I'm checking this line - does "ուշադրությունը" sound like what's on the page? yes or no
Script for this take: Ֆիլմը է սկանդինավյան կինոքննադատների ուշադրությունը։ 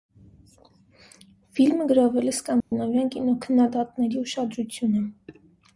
yes